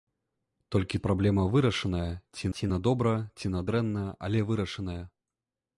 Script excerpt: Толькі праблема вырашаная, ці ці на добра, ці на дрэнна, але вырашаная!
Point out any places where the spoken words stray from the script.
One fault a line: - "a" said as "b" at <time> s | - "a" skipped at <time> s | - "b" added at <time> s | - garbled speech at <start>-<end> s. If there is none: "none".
none